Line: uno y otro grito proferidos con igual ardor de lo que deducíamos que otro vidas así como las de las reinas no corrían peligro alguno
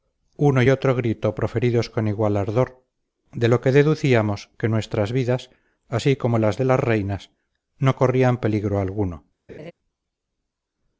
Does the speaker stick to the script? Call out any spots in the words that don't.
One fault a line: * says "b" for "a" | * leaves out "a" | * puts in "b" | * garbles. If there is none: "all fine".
* says "nuestras" for "otro"